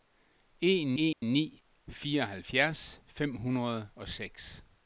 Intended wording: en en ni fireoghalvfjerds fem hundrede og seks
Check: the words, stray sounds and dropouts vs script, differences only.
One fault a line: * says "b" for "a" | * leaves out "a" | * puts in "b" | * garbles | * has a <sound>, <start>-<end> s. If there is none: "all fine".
* has a dropout, 1.1-1.2 s